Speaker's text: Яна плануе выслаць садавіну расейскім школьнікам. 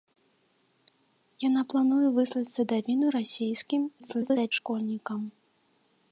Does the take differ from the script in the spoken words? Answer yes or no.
yes